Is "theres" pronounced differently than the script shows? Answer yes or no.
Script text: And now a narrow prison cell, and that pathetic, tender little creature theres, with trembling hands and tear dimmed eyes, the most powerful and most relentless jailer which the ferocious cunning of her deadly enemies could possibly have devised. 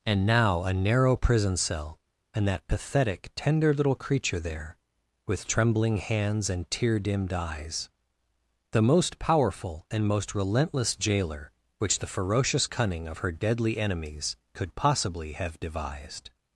yes